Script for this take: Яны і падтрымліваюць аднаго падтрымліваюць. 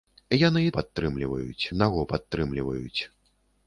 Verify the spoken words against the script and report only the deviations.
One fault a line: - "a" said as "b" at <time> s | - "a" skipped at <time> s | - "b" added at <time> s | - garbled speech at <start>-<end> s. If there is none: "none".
none